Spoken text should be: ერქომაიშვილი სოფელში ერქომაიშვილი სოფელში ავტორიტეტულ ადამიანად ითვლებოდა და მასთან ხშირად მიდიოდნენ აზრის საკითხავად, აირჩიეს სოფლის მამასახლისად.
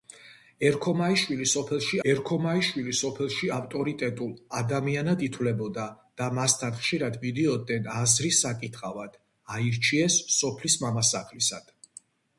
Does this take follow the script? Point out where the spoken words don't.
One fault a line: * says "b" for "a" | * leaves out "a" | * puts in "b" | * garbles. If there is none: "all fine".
all fine